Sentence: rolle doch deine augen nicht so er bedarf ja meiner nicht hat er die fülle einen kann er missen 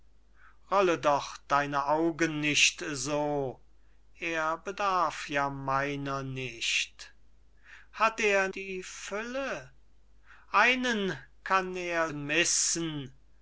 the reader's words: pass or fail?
pass